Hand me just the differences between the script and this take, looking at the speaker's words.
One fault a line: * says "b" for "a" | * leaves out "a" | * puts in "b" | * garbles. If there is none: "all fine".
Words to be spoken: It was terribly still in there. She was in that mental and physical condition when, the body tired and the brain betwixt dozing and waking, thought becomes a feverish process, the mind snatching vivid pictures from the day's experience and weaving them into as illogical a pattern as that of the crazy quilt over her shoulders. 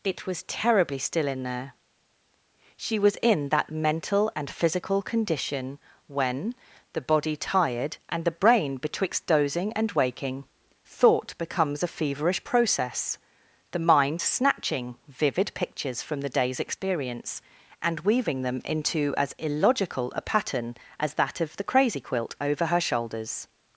all fine